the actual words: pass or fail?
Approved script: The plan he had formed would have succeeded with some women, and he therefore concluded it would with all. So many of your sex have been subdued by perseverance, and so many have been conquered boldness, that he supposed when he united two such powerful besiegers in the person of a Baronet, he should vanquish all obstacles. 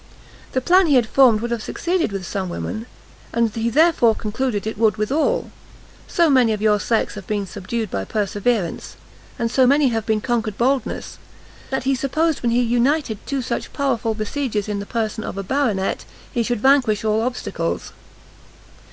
pass